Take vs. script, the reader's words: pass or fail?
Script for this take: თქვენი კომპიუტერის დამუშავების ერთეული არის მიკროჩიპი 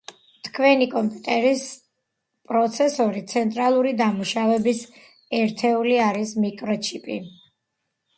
fail